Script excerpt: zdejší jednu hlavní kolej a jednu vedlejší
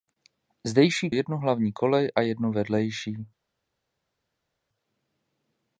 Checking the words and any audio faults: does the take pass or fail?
pass